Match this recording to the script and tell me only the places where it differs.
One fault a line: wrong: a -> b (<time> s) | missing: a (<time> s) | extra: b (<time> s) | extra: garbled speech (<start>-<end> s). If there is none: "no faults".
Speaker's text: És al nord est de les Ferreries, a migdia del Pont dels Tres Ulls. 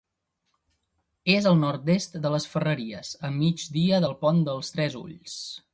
no faults